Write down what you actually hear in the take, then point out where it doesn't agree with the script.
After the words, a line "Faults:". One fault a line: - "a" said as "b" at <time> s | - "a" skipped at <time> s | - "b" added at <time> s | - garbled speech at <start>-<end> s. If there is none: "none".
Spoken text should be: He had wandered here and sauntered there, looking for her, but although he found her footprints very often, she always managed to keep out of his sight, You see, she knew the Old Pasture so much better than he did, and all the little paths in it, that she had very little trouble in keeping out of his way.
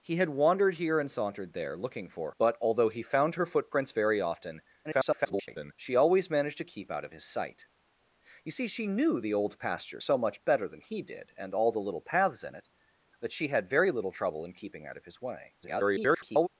He had wandered here and sauntered there, looking for but although he found her footprints very often, [garbled] she always managed to keep out of his sight, You see, she knew the Old Pasture so much better than he did, and all the little paths in it, that she had very little trouble in keeping out of his way. [garbled]
Faults:
- "her" skipped at 2.3 s
- garbled speech at 4.8-5.7 s
- garbled speech at 15.6-16.5 s